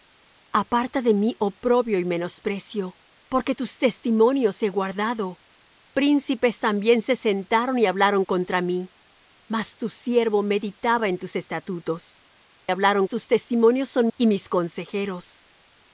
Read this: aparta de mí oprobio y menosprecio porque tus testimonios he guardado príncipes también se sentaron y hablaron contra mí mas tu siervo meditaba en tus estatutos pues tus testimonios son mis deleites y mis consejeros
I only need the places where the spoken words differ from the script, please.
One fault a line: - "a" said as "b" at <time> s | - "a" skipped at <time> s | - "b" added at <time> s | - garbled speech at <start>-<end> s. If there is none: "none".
- "pues" said as "hablaron" at 12.7 s
- "mis deleites" skipped at 14.1 s